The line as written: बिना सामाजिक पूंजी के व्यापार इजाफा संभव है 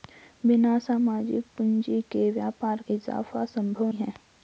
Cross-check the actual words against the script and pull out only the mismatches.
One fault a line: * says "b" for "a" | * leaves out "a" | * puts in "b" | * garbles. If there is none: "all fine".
all fine